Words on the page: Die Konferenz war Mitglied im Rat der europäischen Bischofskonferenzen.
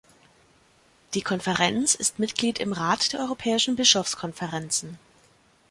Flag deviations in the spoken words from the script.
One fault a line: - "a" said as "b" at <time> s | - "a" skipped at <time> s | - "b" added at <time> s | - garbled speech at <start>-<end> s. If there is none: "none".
- "war" said as "ist" at 1.9 s